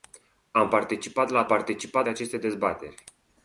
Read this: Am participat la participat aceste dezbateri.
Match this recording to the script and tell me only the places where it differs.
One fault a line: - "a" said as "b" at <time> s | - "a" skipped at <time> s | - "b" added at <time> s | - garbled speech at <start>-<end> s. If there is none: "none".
none